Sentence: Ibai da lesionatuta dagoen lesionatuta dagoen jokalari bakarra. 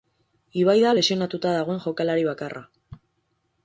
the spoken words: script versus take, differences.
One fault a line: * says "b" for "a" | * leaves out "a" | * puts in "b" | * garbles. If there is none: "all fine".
* leaves out "lesionatuta dagoen"